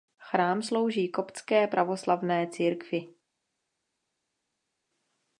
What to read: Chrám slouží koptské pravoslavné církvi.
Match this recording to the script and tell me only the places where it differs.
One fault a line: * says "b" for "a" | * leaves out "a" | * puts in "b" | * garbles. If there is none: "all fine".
all fine